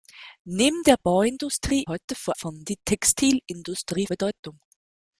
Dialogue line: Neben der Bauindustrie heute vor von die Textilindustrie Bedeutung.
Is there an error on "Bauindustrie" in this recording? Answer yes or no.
no